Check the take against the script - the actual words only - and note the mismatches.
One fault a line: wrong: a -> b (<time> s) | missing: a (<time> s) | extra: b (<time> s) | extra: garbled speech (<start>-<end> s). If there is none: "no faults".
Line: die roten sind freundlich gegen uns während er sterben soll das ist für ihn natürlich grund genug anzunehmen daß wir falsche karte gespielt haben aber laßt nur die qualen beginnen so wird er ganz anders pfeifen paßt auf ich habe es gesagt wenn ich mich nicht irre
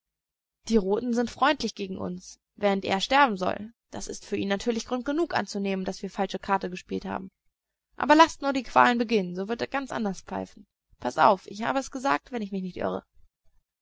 no faults